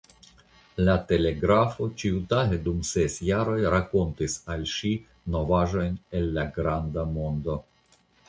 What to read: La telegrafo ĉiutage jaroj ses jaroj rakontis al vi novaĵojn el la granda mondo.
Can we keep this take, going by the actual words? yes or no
no